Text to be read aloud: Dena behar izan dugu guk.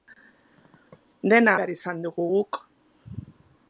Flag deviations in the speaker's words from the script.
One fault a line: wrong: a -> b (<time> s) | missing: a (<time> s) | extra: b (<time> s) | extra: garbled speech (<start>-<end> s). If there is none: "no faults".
no faults